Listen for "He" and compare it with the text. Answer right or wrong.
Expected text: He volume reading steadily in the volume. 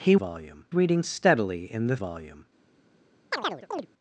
right